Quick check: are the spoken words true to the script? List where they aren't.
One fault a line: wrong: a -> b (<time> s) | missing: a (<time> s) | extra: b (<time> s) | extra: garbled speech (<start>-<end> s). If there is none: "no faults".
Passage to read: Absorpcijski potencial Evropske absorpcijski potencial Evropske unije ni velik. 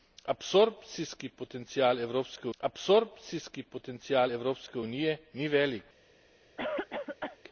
no faults